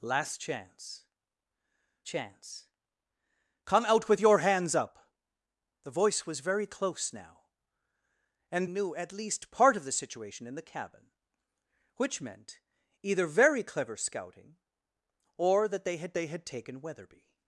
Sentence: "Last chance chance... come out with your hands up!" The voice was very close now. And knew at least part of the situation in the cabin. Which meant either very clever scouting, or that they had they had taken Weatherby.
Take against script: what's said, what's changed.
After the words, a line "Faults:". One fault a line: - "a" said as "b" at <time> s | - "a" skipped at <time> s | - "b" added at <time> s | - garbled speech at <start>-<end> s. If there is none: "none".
"Last chance chance... come out with your hands up!" The voice was very close now. And knew at least part of the situation in the cabin. Which meant either very clever scouting, or that they had they had taken Weatherby.
Faults:
none